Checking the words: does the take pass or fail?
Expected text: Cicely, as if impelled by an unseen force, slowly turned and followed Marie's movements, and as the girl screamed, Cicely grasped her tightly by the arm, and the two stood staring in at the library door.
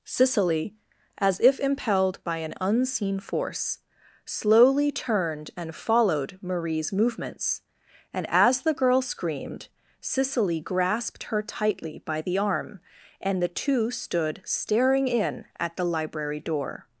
pass